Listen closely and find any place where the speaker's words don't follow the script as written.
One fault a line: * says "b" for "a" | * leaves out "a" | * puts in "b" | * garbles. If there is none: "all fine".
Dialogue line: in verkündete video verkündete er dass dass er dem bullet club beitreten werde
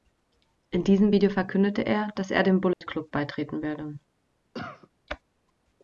* says "diesem" for "verkündete"
* leaves out "dass"